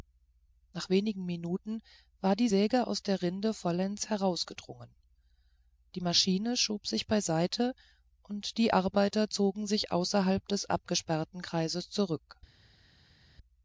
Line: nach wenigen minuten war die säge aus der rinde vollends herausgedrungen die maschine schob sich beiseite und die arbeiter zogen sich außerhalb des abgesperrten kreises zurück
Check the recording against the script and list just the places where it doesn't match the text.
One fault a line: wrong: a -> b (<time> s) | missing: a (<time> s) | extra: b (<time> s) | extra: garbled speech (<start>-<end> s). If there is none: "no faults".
no faults